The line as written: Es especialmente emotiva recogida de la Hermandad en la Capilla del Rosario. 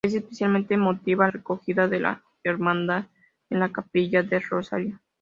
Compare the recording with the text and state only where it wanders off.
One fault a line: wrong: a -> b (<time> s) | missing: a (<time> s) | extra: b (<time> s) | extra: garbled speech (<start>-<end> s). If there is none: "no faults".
no faults